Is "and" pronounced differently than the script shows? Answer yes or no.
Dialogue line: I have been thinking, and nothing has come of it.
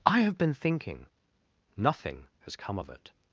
yes